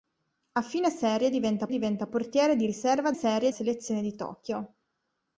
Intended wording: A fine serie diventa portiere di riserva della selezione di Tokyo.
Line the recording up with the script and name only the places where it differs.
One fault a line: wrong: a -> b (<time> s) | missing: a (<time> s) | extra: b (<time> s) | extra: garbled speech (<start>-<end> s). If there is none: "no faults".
extra: diventa (1.7 s)
wrong: della -> serie (3.1 s)